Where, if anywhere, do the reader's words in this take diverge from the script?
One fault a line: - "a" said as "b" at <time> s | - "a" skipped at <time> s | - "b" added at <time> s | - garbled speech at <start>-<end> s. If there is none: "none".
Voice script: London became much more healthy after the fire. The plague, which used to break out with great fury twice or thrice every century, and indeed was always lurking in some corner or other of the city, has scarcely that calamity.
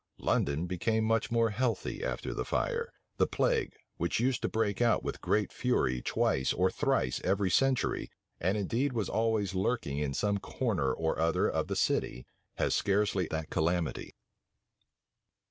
none